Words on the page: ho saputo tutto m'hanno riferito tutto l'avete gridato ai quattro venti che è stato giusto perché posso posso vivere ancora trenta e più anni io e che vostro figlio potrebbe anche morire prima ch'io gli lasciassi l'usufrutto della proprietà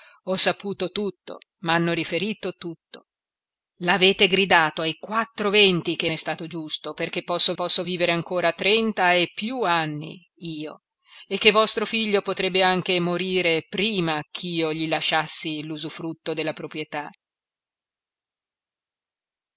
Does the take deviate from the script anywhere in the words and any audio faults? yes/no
no